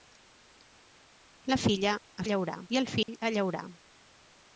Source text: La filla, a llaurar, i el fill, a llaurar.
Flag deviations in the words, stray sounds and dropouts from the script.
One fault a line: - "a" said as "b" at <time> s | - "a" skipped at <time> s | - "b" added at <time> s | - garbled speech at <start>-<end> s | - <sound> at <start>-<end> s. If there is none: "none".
- dropout at 3.0-3.1 s